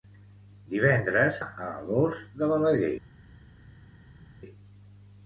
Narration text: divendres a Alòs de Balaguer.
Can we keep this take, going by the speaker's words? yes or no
yes